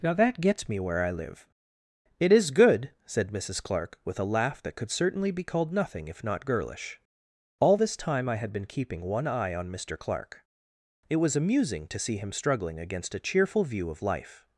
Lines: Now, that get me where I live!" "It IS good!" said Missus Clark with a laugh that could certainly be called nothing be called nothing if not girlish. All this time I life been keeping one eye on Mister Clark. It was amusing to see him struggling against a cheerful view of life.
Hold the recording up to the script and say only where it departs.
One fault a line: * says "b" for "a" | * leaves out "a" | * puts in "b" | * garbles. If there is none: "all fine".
* says "gets" for "get"
* leaves out "be called nothing"
* says "had" for "life"